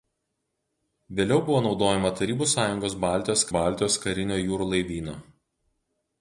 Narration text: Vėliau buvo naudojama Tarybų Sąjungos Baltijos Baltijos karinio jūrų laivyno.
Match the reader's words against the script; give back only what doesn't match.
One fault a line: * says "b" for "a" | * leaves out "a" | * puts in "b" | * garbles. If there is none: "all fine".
all fine